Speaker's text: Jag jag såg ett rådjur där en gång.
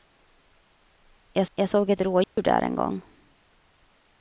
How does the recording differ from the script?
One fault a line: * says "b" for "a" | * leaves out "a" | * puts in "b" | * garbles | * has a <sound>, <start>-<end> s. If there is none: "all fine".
* has a dropout, 2.2-2.4 s